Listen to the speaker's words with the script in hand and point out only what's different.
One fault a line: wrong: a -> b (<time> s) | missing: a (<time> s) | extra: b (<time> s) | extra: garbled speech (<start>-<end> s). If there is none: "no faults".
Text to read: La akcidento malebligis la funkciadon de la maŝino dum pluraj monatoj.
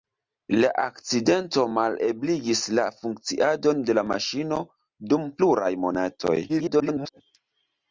extra: garbled speech (6.5-7.2 s)